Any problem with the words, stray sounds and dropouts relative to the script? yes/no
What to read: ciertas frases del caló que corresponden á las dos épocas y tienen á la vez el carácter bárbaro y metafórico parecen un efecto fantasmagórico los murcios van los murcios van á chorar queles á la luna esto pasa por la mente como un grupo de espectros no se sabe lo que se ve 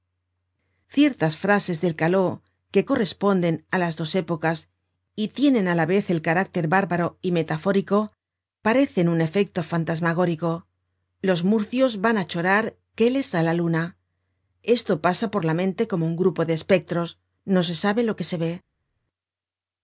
yes